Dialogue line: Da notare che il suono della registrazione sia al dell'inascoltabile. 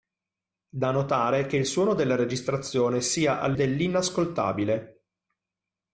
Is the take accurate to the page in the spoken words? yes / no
yes